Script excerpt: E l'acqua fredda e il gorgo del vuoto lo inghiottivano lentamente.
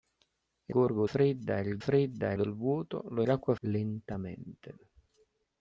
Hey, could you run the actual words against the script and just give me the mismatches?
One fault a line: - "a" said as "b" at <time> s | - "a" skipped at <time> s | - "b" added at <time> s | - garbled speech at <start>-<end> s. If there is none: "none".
- "l'acqua" said as "gorgo" at 0.7 s
- "gorgo" said as "fredda" at 1.8 s
- "inghiottivano" said as "l'acqua" at 3.2 s